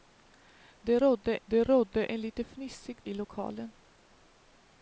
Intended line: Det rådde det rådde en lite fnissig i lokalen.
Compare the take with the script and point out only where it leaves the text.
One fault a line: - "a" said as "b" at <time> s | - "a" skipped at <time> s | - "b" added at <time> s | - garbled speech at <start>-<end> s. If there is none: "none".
none